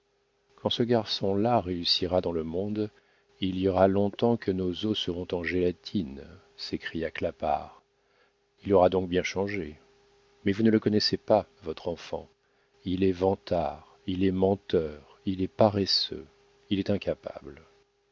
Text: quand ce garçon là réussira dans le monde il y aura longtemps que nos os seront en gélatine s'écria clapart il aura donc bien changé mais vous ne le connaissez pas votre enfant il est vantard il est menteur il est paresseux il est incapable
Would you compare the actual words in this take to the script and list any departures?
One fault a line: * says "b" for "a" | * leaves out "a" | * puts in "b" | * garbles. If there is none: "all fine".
all fine